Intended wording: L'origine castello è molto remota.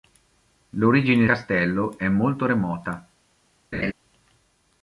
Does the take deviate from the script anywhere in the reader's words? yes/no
no